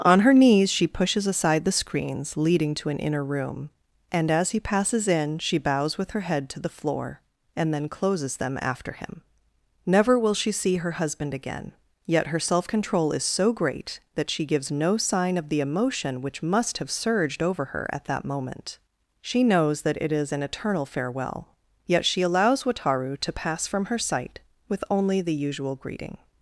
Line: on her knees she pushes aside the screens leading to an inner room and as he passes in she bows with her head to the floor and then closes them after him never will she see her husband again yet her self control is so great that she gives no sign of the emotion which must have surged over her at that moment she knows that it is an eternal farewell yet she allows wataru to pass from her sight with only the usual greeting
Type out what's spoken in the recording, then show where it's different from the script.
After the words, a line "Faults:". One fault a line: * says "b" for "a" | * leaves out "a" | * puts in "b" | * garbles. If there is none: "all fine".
on her knees she pushes aside the screens leading to an inner room and as he passes in she bows with her head to the floor and then closes them after him never will she see her husband again yet her self control is so great that she gives no sign of the emotion which must have surged over her at that moment she knows that it is an eternal farewell yet she allows wataru to pass from her sight with only the usual greeting
Faults:
all fine